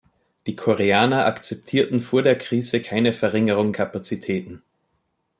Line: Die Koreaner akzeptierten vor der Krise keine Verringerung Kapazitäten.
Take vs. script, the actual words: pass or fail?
pass